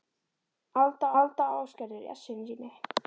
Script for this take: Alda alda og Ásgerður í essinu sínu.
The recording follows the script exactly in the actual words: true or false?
true